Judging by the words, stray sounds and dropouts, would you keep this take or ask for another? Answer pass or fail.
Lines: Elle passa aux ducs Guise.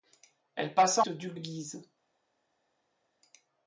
pass